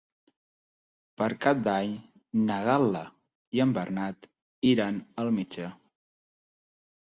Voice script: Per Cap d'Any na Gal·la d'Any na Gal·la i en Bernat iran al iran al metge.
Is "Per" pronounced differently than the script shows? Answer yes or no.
no